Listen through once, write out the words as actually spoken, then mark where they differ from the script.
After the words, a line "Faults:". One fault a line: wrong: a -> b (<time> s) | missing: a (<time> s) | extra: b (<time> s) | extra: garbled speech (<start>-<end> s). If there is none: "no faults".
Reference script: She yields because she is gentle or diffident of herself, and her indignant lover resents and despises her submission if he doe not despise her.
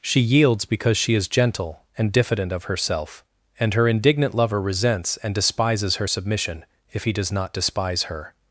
She yields because she is gentle and diffident of herself, and her indignant lover resents and despises her submission if he does not despise her.
Faults:
wrong: or -> and (2.0 s)
wrong: doe -> does (7.1 s)